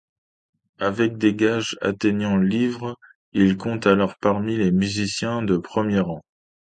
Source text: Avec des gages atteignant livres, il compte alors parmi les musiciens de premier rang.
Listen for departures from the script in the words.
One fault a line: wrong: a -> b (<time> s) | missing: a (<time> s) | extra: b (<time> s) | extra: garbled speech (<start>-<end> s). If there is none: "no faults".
no faults